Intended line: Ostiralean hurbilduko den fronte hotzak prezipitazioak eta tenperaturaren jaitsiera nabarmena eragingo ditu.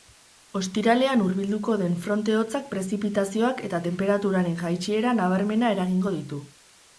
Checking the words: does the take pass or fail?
pass